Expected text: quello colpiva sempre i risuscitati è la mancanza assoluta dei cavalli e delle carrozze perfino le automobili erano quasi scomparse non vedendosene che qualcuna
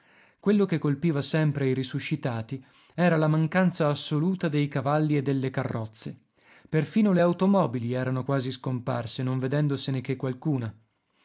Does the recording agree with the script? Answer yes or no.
no